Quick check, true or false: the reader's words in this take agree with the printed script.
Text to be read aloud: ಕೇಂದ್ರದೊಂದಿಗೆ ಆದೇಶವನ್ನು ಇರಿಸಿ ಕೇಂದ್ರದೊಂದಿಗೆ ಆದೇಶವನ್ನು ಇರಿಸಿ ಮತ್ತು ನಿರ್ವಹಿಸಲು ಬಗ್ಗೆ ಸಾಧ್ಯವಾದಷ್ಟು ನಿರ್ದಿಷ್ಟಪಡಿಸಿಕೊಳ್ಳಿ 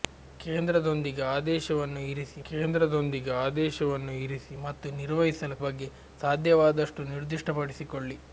true